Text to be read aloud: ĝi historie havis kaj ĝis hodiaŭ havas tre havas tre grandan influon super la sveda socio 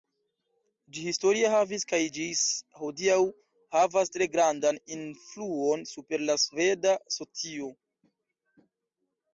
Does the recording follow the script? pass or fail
fail